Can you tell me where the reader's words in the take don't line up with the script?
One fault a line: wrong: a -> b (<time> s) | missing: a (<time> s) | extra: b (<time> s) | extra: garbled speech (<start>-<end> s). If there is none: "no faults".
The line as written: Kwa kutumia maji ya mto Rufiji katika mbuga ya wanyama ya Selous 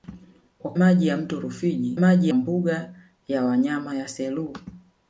missing: kutumia (0.7 s)
wrong: katika -> maji (1.9 s)